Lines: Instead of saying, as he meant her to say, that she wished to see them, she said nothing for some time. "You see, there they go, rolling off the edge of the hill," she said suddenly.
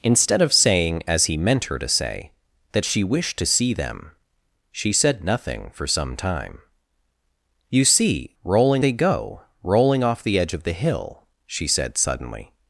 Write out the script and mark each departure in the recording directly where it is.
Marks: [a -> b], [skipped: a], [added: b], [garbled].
Instead of saying, as he meant her to say, that she wished to see them, she said nothing for some time. "You see, [there -> rolling] they go, rolling off the edge of the hill," she said suddenly.